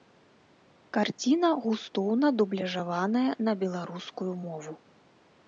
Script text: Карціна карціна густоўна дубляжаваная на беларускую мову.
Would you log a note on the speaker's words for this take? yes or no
yes